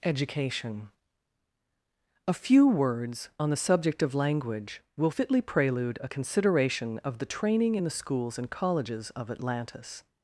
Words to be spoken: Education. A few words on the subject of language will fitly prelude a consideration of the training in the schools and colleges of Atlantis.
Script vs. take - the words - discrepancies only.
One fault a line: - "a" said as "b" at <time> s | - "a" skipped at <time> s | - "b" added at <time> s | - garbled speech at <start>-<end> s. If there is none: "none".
none